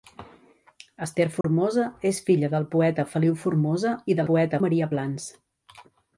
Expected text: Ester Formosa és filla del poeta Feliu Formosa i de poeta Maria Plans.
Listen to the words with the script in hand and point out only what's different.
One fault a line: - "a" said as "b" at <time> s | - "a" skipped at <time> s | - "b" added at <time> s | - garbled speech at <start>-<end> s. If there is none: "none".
none